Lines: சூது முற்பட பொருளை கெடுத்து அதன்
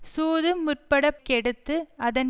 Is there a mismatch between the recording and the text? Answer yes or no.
yes